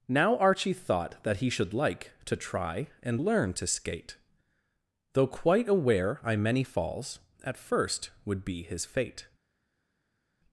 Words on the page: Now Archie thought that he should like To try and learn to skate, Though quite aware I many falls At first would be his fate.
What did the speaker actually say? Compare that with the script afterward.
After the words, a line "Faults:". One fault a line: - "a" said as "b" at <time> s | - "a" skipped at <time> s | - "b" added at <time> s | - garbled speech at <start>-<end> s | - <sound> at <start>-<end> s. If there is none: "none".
Now Archie thought that he should like To try and learn to skate, Though quite aware I many falls At first would be his fate.
Faults:
none